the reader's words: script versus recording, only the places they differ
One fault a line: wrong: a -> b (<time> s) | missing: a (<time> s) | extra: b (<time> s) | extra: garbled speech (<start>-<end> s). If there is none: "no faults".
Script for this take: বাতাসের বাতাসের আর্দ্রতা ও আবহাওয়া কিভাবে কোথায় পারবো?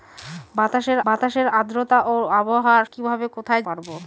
no faults